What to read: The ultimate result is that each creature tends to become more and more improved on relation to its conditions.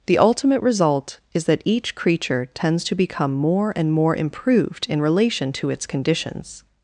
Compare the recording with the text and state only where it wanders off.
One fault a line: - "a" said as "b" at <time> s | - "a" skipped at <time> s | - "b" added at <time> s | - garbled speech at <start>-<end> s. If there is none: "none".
- "on" said as "in" at 4.9 s